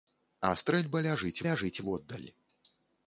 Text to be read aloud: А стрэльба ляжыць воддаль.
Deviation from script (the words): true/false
true